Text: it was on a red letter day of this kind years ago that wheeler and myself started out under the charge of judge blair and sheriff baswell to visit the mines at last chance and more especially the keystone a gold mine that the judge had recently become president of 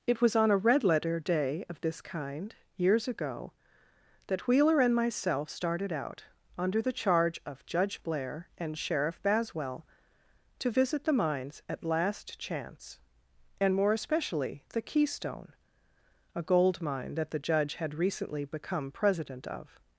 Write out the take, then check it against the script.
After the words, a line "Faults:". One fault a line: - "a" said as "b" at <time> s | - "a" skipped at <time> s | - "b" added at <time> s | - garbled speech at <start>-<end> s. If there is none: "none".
it was on a red letter day of this kind years ago that wheeler and myself started out under the charge of judge blair and sheriff baswell to visit the mines at last chance and more especially the keystone a gold mine that the judge had recently become president of
Faults:
none